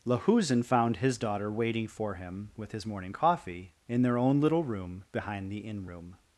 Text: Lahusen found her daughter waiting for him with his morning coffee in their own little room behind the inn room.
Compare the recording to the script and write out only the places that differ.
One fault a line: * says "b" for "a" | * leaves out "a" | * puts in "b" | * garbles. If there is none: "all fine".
* says "his" for "her"